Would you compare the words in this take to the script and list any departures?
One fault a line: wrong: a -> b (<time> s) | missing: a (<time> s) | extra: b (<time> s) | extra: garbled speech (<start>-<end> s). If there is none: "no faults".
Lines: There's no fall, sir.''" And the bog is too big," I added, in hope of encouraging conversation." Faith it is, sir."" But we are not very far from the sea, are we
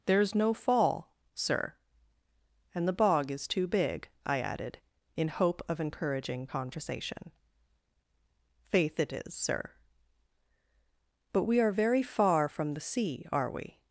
missing: not (11.7 s)